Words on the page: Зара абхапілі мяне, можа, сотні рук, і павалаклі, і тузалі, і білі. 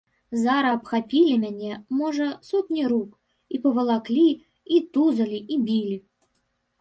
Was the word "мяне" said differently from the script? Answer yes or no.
no